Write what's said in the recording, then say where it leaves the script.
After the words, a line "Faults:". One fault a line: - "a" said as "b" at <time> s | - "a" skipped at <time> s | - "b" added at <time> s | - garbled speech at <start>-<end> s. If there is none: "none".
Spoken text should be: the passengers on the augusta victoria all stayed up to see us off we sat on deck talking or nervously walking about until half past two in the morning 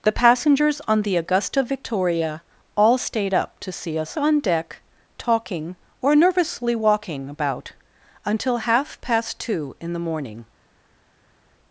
the passengers on the augusta victoria all stayed up to see us on deck talking or nervously walking about until half past two in the morning
Faults:
- "off we sat" skipped at 4.2 s